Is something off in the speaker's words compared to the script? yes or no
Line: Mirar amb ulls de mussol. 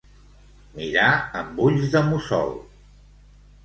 no